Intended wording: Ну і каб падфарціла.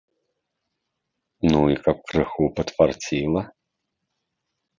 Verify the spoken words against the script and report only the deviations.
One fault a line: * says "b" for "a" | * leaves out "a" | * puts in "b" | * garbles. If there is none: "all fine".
* puts in "крыху"